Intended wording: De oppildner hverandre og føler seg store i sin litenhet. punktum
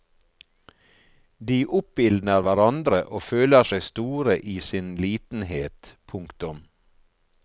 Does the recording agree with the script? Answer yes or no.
yes